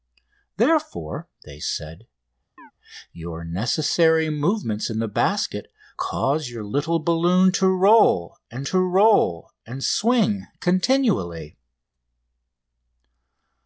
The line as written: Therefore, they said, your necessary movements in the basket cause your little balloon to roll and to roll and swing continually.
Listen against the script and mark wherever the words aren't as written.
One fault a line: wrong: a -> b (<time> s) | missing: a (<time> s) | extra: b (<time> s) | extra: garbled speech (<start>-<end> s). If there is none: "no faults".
no faults